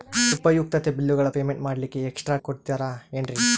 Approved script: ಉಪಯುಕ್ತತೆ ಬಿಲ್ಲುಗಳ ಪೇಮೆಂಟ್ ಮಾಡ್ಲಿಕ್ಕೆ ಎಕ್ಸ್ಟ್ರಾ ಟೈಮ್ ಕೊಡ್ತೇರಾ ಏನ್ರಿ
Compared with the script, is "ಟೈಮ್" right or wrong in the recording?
wrong